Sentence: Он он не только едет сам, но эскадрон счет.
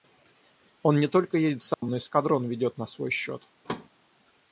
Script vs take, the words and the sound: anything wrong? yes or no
yes